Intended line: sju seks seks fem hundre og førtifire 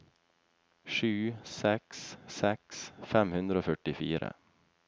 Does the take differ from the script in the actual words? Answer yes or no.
no